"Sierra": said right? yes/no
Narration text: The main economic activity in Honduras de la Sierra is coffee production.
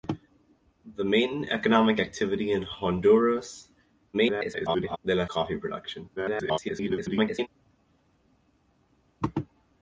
no